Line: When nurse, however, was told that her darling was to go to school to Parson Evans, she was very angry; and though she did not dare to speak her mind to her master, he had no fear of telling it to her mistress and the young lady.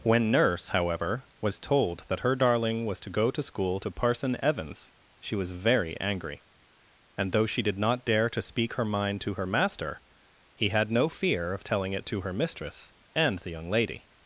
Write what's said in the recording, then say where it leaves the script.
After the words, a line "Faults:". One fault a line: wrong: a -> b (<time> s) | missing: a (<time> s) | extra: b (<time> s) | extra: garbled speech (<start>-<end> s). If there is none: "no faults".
When nurse, however, was told that her darling was to go to school to Parson Evans, she was very angry; and though she did not dare to speak her mind to her master, he had no fear of telling it to her mistress and the young lady.
Faults:
no faults